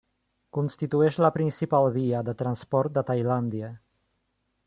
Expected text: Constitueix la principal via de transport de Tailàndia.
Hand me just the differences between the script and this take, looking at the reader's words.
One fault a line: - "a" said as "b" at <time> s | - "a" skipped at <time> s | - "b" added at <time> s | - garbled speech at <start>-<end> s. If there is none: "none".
none